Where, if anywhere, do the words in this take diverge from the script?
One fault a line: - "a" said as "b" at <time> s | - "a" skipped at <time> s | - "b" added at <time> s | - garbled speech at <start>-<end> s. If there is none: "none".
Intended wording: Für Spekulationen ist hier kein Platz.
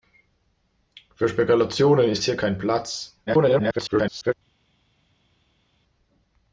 - garbled speech at 3.3-4.3 s